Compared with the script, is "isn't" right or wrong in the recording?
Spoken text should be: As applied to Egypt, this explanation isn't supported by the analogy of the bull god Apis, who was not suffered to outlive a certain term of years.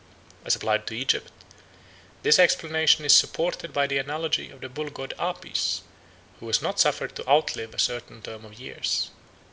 wrong